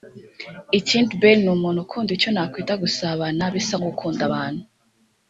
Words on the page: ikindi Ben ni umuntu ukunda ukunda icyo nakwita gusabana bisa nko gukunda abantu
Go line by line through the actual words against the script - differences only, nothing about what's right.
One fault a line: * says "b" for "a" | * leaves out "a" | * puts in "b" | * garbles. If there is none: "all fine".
* leaves out "ukunda"